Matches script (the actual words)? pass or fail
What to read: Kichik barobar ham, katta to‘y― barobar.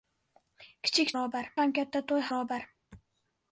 pass